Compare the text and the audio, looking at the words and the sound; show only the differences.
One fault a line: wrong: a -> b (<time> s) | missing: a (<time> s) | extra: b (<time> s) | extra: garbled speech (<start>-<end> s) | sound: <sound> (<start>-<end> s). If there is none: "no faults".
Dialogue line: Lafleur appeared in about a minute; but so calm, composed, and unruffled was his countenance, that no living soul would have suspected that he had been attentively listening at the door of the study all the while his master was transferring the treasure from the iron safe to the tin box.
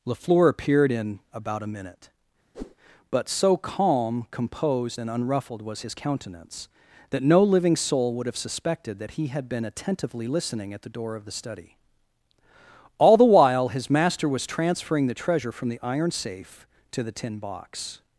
sound: whoosh (2.5-2.8 s)